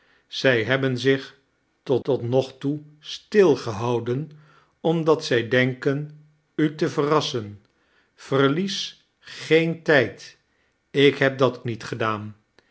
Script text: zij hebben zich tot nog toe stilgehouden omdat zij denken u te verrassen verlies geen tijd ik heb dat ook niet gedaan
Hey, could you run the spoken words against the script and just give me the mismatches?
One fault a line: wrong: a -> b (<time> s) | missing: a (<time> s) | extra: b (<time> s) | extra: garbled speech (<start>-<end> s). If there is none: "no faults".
extra: tot (2.0 s)
missing: ook (11.6 s)